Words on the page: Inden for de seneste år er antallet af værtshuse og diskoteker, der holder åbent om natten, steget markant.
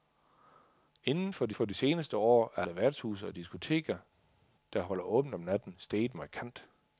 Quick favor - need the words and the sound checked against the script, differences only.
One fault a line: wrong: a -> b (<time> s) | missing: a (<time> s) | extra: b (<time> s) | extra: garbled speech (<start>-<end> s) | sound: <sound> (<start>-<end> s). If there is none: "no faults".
extra: for de (1.5 s)
missing: antallet (2.6 s)